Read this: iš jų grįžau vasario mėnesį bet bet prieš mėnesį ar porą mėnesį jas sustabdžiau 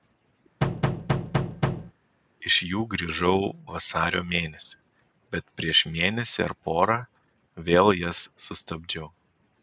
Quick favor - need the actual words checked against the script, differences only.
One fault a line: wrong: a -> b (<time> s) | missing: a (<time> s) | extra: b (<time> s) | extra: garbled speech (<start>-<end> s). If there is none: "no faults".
missing: bet (5.5 s)
wrong: mėnesį -> vėl (7.7 s)